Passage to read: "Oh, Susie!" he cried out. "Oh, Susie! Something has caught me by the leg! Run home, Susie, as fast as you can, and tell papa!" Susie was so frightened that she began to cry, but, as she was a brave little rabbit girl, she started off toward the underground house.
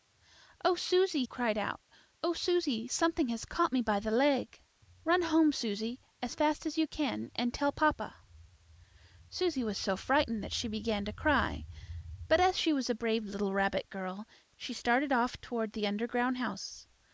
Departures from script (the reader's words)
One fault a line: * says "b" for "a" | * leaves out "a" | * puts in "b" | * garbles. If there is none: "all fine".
* leaves out "he"